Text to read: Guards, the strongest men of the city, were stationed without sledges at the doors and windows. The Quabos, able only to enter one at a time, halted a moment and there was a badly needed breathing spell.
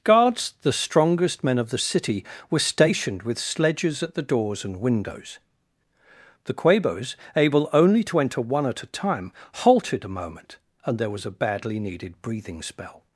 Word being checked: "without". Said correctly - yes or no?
no